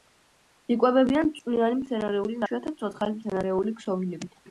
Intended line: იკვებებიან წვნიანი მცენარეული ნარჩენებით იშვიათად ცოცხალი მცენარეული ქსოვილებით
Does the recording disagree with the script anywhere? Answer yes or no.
yes